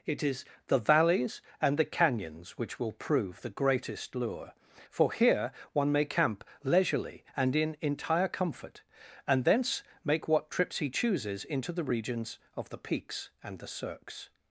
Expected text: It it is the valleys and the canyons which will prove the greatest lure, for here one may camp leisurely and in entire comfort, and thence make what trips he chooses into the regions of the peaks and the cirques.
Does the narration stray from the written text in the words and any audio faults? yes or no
yes